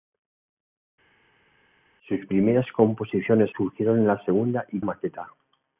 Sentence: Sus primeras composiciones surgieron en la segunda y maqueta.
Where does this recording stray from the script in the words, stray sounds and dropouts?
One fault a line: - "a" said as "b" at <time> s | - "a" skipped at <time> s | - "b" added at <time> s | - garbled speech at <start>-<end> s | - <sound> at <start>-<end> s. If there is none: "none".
none